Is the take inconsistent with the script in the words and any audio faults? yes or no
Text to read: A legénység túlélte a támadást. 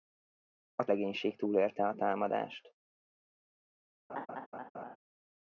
yes